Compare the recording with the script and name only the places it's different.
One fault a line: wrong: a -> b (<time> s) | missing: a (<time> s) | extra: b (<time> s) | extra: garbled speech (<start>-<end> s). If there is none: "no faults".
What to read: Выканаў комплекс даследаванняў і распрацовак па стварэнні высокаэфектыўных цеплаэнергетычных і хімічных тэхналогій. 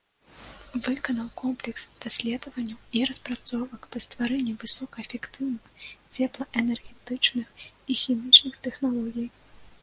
no faults